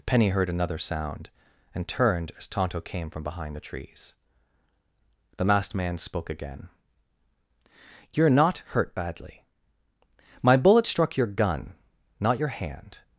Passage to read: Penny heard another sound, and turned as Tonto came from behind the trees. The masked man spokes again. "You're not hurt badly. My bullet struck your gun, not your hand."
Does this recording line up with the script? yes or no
no